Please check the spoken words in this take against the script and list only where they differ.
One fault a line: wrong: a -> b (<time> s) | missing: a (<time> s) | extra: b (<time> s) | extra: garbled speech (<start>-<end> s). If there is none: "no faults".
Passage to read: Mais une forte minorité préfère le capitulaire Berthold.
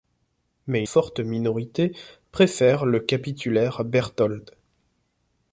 missing: une (0.8 s)